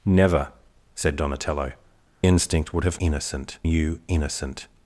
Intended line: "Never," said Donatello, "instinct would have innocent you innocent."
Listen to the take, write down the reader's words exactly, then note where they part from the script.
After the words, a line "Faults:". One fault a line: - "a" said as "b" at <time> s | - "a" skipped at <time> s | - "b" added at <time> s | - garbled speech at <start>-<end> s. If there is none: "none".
"Never," said Donatello, "instinct would have innocent you innocent."
Faults:
none